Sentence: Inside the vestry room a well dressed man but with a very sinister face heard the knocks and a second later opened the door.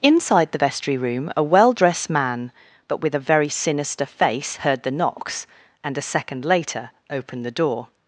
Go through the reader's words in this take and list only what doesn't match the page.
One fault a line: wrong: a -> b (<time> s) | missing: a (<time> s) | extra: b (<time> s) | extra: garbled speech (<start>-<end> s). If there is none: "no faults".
no faults